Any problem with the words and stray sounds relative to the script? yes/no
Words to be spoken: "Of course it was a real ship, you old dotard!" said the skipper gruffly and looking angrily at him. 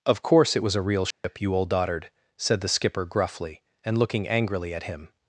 yes